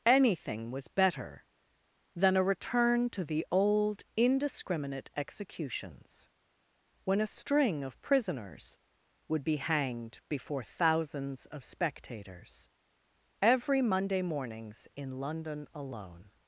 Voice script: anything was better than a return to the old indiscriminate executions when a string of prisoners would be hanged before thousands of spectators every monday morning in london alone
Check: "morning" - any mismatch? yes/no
yes